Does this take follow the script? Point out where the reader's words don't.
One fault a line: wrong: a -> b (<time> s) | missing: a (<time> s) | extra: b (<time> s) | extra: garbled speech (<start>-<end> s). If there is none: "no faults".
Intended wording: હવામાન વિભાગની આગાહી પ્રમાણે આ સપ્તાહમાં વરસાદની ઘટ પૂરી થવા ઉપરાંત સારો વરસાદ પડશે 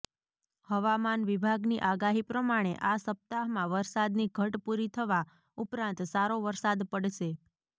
no faults